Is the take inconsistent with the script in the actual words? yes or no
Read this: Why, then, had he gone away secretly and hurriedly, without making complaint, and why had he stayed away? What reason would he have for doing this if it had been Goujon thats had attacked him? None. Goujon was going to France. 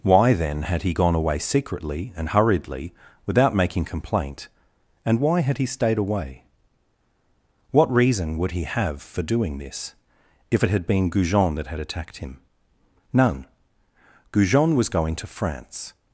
yes